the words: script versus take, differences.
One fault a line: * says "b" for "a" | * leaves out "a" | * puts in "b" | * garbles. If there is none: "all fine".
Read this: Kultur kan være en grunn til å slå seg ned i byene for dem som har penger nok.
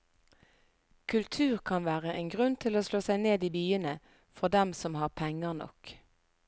all fine